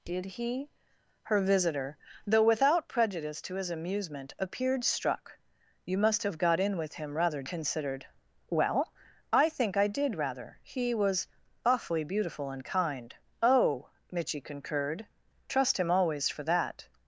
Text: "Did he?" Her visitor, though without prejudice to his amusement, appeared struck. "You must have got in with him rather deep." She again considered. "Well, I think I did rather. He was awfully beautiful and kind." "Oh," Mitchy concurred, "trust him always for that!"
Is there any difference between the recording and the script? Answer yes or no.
yes